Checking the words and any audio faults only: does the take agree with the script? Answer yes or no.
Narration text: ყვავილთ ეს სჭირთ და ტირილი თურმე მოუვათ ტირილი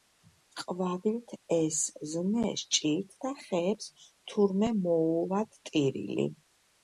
no